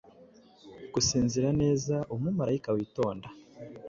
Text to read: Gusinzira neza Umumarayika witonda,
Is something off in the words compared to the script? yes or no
no